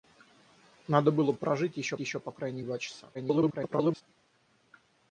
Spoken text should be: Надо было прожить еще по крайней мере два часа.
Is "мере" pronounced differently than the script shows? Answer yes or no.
yes